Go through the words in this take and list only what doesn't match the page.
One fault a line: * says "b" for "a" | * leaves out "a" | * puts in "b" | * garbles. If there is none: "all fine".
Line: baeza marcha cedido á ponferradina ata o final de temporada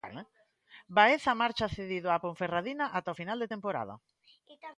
all fine